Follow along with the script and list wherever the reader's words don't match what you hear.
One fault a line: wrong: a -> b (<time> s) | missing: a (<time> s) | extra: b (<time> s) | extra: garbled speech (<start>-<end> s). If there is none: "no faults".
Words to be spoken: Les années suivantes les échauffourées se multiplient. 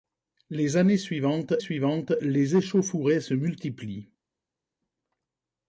extra: suivantes (1.6 s)